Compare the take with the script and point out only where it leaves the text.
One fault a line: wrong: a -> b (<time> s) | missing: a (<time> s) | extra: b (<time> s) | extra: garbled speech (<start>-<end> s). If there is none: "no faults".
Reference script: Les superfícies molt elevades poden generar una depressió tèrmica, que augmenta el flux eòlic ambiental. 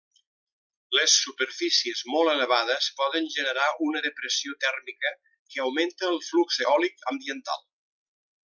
no faults